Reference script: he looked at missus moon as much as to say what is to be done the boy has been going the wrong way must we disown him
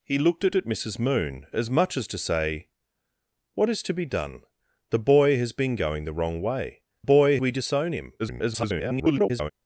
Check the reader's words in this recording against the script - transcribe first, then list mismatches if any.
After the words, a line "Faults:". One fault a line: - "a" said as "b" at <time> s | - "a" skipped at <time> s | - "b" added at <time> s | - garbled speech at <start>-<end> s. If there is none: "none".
he looked at at missus moon as much as to say what is to be done the boy has been going the wrong way boy we disown him [garbled]
Faults:
- "at" added at 0.5 s
- "must" said as "boy" at 7.0 s
- garbled speech at 8.2-9.5 s